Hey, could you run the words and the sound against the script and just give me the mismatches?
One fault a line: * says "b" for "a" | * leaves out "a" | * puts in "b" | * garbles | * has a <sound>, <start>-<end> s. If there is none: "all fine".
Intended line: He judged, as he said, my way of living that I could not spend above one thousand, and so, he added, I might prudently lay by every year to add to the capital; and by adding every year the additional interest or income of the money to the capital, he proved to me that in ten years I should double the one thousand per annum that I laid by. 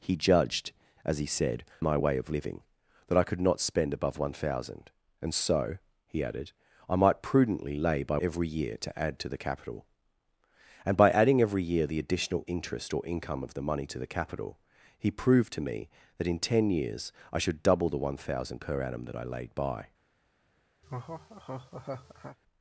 * has a laugh, 20.8-22.4 s